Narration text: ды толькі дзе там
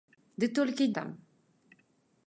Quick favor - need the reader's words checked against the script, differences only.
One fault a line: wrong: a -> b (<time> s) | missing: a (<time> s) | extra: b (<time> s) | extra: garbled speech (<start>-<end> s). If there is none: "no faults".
missing: дзе (0.9 s)